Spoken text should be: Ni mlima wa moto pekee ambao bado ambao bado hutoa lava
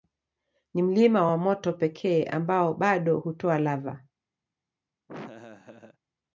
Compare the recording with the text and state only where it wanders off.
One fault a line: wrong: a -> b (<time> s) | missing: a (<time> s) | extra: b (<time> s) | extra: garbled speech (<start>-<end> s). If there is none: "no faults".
missing: ambao bado (3.2 s)